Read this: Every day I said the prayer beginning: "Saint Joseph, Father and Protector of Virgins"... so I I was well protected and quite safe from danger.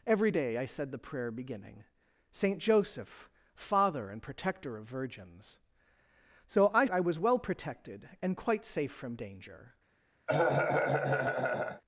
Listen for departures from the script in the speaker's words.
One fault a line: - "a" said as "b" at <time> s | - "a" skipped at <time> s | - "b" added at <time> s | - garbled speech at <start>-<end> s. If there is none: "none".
none